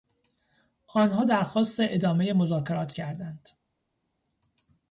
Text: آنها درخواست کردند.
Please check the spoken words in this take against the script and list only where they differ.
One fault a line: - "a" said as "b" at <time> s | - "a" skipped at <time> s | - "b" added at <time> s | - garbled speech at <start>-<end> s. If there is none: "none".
- "ادامهی مذاکرات" added at 1.8 s